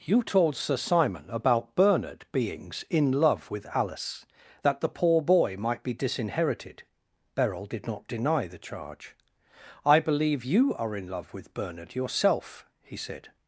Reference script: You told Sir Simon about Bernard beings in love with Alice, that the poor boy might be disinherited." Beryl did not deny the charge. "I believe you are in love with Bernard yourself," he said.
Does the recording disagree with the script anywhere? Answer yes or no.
no